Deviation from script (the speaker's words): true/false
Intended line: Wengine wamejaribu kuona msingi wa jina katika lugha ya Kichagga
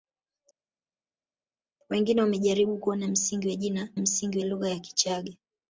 true